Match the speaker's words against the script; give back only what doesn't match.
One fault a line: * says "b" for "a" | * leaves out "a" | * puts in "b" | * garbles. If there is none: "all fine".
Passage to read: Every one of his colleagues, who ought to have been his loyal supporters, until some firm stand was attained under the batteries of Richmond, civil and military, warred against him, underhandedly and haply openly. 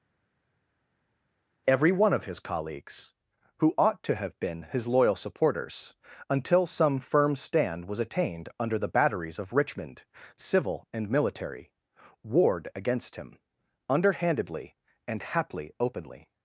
all fine